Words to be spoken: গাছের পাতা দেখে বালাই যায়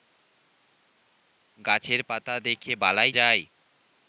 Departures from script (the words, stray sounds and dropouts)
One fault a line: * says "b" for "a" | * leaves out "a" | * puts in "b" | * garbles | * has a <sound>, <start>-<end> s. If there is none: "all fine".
all fine